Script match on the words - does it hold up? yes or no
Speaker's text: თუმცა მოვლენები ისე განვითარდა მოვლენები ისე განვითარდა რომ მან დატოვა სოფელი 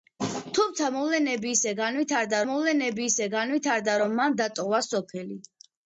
yes